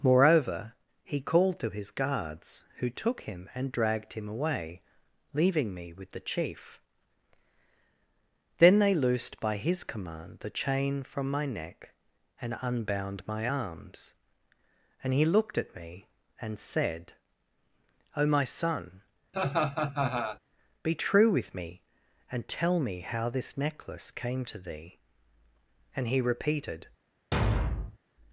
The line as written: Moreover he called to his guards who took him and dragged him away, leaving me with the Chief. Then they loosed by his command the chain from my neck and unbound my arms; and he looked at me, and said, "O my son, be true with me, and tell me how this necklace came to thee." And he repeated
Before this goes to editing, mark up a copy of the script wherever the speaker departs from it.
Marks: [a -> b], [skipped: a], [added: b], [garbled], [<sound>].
Moreover he called to his guards who took him and dragged him away, leaving me with the Chief. Then they loosed by his command the chain from my neck and unbound my arms; and he looked at me, and said, "O my son, [laugh] be true with me, and tell me how this necklace came to thee." And he repeated [thud]